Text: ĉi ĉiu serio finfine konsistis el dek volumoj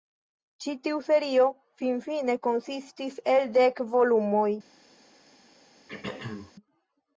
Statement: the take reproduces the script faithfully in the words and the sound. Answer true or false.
false